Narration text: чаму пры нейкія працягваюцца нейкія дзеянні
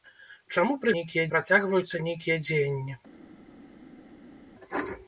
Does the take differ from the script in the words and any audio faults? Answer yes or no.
no